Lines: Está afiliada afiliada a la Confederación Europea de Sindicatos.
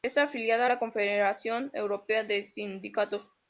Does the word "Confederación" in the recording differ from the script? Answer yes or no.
no